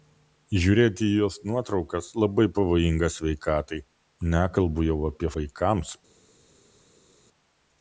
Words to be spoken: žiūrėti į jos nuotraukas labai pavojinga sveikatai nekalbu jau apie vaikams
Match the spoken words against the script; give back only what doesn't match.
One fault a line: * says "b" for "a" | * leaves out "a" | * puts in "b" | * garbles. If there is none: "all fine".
all fine